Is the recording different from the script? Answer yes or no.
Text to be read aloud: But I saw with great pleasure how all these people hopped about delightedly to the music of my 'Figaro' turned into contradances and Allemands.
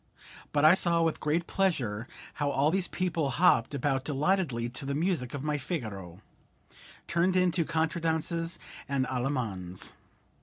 no